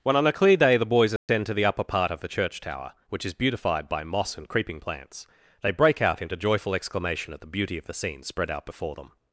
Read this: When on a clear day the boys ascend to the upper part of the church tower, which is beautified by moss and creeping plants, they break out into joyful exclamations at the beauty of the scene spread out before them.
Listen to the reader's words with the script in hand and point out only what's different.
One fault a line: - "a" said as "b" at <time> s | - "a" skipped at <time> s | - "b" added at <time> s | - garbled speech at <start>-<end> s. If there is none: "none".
- "exclamations" said as "exclamation" at 6.7 s